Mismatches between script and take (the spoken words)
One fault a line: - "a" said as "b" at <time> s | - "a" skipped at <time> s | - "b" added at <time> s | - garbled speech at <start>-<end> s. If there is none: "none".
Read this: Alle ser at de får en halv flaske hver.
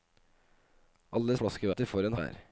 - "ser" said as "flaske" at 1.4 s
- "halv flaske" skipped at 2.2 s